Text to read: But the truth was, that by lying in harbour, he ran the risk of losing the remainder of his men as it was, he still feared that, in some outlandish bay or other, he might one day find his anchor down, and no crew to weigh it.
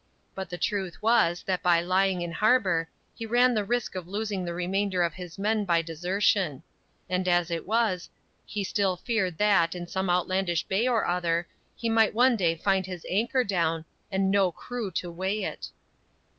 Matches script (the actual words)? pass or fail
fail